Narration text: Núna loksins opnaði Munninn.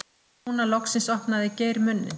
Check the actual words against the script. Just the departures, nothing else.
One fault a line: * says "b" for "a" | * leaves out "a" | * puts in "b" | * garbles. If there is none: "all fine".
* puts in "Geir"